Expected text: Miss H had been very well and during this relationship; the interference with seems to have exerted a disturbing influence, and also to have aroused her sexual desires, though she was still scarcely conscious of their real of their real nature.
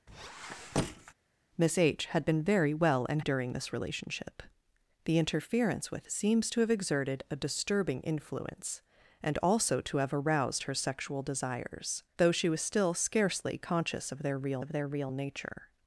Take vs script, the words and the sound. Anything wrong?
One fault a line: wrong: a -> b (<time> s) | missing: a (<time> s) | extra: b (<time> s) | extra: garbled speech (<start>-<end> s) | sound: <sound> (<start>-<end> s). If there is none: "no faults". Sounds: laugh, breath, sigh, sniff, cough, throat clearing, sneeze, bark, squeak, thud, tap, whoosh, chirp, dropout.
sound: squeak (0.1-1.1 s)